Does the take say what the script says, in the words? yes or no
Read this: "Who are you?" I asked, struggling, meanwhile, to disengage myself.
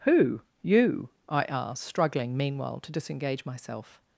no